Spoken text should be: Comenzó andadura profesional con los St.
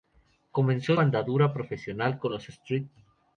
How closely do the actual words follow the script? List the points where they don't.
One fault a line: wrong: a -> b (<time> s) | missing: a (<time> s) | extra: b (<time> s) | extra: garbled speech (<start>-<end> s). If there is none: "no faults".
no faults